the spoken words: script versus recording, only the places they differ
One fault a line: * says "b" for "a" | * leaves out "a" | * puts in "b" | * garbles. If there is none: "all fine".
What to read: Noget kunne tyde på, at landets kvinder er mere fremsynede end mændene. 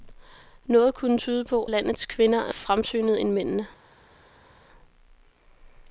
* leaves out "at"
* leaves out "mere"